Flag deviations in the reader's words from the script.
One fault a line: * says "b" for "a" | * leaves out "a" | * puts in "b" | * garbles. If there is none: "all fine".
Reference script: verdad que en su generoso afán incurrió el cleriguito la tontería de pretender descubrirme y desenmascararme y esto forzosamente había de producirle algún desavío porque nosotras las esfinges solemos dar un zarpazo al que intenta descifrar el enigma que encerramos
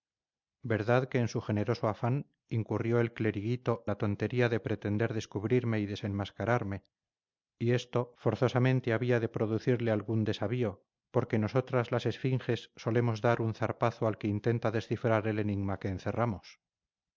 all fine